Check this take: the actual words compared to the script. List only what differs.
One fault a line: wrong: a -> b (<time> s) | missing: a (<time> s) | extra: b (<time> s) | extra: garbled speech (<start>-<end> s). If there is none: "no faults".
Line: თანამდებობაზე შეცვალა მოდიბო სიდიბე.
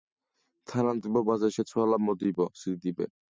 no faults